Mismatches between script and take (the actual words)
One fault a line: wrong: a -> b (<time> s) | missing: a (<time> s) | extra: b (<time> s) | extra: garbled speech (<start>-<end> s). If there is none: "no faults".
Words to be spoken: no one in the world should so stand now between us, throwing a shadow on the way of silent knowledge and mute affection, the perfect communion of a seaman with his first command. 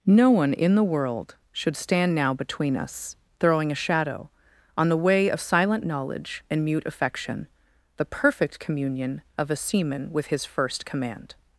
missing: so (1.8 s)